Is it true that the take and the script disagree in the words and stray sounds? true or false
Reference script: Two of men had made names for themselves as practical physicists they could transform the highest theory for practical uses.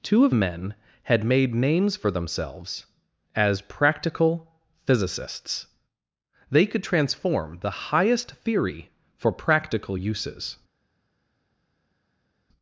false